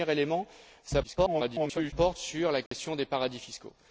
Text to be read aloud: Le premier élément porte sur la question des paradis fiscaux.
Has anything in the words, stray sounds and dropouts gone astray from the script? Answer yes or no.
yes